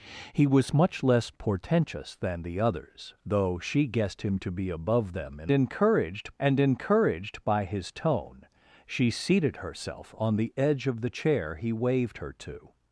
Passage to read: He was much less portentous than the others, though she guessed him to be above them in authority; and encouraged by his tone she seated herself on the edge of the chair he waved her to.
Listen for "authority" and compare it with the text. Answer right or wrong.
wrong